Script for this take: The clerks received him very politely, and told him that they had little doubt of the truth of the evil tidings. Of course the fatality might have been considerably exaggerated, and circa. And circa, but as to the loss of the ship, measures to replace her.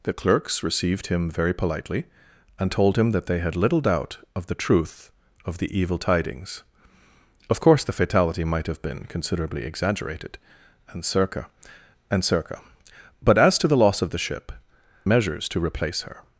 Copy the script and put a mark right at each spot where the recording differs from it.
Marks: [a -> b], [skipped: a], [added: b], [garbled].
The clerks received him very politely, and told him that they had little doubt of the truth of the evil tidings. Of course the fatality might have been considerably exaggerated, and circa. And circa, but as to the loss of the ship, measures to replace her.